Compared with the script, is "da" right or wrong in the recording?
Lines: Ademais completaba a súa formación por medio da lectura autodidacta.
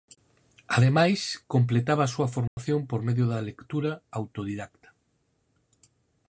right